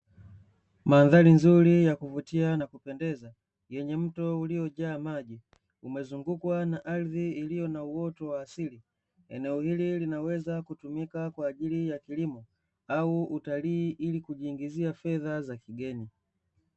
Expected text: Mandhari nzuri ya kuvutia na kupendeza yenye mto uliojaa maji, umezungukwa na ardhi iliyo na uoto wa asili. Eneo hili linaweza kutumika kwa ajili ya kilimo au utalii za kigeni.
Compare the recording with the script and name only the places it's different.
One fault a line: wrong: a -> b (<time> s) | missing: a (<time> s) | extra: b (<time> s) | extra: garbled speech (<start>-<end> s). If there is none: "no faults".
extra: ili kujiingizia fedha (13.9 s)